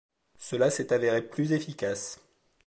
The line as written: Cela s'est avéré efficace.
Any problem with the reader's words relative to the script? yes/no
yes